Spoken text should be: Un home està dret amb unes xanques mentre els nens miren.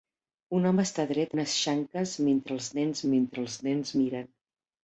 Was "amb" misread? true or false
true